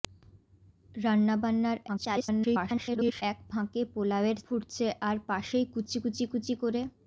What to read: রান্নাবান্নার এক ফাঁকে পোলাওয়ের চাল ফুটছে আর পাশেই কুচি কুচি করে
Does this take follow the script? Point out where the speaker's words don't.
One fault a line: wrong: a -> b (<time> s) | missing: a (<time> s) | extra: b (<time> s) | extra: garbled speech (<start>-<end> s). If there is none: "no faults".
extra: garbled speech (1.9-3.2 s)
missing: চাল (4.4 s)
extra: কুচি (6.3 s)